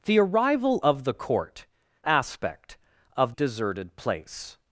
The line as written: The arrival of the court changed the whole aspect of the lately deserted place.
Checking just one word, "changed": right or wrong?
wrong